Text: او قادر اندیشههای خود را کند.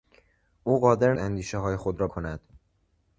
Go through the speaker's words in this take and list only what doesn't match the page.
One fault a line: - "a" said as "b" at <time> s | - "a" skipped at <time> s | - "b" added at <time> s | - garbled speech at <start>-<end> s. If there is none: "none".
none